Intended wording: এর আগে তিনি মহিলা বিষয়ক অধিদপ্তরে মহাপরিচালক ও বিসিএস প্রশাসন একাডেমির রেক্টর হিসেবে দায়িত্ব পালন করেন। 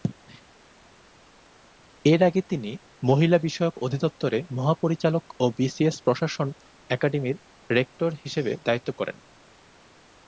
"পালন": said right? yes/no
no